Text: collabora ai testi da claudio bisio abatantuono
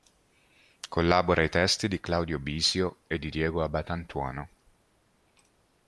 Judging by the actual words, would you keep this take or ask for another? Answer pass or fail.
fail